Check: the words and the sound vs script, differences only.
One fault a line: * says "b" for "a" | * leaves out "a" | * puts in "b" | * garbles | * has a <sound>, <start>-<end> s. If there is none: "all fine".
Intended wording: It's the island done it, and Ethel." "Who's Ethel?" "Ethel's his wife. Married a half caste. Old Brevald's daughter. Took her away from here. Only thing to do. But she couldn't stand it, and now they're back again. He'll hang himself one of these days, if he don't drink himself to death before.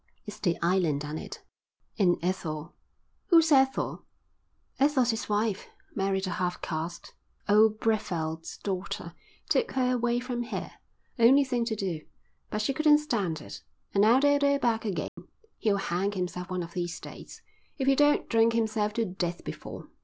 * puts in "they're"
* has a dropout, 15.1-15.2 s